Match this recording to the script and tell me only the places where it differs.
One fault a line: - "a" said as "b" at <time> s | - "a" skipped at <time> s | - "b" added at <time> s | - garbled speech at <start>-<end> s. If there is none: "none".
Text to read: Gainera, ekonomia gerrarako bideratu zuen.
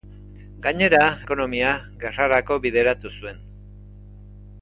none